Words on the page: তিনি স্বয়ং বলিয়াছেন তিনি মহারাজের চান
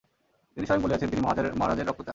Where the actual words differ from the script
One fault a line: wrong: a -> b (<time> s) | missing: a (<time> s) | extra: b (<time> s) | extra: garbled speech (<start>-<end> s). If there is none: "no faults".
extra: রক্ত (1.9 s)